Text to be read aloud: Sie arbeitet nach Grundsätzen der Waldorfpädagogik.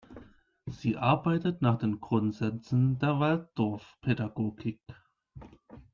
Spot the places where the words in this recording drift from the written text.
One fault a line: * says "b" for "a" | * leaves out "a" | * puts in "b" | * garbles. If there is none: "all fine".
* puts in "den"